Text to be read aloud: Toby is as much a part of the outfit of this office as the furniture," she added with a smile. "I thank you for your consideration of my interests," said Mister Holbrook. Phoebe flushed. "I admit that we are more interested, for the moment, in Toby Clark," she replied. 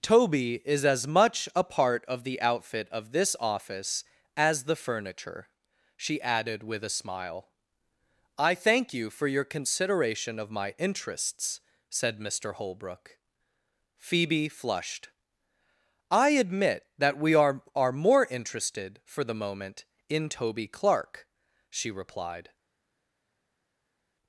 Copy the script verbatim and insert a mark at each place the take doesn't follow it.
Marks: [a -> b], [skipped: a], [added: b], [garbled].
Toby is as much a part of the outfit of this office as the furniture," she added with a smile. "I thank you for your consideration of my interests," said Mister Holbrook. Phoebe flushed. "I admit that we are [added: are] more interested, for the moment, in Toby Clark," she replied.